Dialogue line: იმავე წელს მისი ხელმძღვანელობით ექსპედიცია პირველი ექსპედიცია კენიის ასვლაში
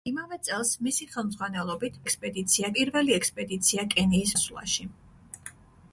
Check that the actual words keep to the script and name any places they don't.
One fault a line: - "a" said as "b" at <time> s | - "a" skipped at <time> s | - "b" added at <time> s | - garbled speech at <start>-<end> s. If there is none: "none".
none